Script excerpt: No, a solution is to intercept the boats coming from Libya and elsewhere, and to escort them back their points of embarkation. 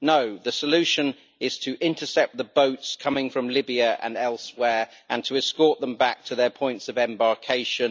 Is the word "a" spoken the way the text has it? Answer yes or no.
no